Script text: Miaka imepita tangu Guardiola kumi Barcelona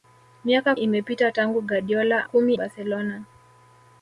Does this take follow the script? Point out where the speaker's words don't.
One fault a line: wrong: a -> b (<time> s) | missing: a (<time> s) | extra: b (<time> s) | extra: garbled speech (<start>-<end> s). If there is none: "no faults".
no faults